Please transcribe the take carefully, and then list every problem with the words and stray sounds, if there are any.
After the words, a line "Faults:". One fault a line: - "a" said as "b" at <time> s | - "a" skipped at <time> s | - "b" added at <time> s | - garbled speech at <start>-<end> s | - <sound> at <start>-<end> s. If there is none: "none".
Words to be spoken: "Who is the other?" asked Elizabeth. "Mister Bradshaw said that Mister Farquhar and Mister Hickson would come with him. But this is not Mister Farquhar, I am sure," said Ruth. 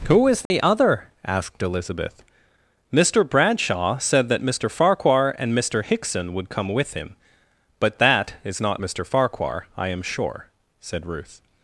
"Who is the other?" asked Elizabeth. "Mister Bradshaw said that Mister Farquhar and Mister Hickson would come with him. But that is not Mister Farquhar, I am sure," said Ruth.
Faults:
- dropout at 0.5-0.5 s
- "this" said as "that" at 8.0 s